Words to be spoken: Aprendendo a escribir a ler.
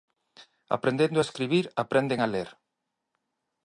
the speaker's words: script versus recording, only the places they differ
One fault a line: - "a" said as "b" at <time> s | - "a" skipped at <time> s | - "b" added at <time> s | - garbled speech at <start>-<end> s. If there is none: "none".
- "aprenden" added at 1.8 s